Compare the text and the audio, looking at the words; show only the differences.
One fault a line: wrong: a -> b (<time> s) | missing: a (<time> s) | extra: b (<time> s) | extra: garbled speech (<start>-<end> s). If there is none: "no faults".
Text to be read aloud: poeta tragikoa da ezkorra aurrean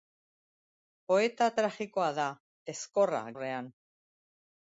no faults